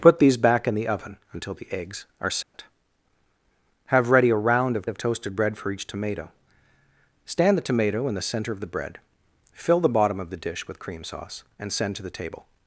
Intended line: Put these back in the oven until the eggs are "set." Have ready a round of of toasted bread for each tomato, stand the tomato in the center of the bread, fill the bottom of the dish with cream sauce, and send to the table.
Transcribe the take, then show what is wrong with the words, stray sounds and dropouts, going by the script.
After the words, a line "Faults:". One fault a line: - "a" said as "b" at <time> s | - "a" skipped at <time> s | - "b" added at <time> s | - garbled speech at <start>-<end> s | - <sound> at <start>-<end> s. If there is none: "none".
Put these back in the oven until the eggs are "set." Have ready a round of of toasted bread for each tomato, stand the tomato in the center of the bread, fill the bottom of the dish with cream sauce, and send to the table.
Faults:
- dropout at 2.4-2.5 s